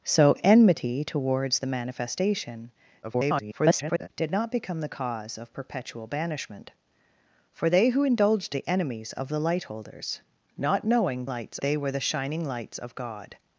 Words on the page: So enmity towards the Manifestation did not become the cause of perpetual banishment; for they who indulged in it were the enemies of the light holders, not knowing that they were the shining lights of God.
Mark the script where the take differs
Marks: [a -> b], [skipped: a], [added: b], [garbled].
So enmity towards the Manifestation [garbled] did not become the cause of perpetual banishment; for they who indulged [skipped: in it were] the enemies of the light holders, not knowing [that -> lights] they were the shining lights of God.